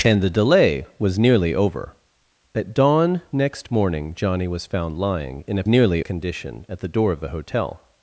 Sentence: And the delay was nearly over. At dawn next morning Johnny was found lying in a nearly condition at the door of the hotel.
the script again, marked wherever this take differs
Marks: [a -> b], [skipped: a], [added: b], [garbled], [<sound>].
And the delay was nearly over. At dawn next morning Johnny was found lying in a nearly condition at the door of the hotel.